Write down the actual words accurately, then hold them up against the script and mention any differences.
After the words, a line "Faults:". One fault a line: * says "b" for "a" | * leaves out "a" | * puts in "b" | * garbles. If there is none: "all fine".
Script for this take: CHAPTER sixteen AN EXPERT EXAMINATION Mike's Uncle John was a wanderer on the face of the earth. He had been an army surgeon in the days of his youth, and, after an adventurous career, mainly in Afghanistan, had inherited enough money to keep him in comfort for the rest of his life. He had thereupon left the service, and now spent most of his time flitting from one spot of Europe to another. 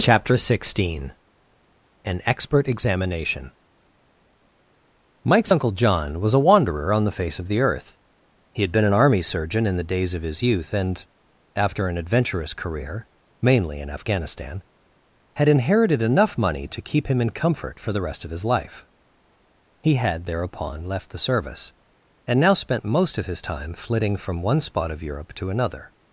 CHAPTER sixteen AN EXPERT EXAMINATION Mike's Uncle John was a wanderer on the face of the earth. He had been an army surgeon in the days of his youth, and, after an adventurous career, mainly in Afghanistan, had inherited enough money to keep him in comfort for the rest of his life. He had thereupon left the service, and now spent most of his time flitting from one spot of Europe to another.
Faults:
all fine